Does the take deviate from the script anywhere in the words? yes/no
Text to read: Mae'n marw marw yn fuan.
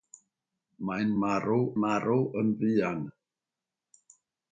no